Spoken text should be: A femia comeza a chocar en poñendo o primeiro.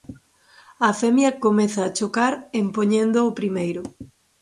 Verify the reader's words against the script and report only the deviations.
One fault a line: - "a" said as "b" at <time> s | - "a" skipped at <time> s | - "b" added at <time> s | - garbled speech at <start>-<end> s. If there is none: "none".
none